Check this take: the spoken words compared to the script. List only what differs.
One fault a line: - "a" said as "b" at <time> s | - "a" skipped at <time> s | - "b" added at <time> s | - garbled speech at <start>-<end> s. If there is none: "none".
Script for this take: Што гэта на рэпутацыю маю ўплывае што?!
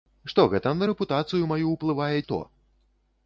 none